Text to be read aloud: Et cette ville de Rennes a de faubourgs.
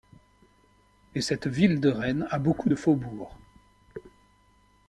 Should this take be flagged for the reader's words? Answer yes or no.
yes